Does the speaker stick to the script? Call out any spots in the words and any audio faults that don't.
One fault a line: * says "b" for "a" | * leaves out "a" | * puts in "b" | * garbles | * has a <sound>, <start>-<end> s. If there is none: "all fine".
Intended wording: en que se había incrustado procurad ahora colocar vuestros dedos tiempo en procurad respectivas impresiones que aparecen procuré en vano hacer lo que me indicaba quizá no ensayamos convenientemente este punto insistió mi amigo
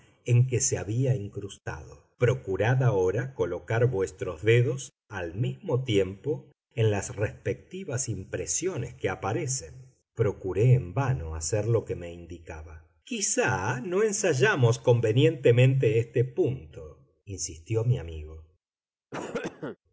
* puts in "al mismo"
* says "las" for "procurad"
* has a cough, 19.1-19.8 s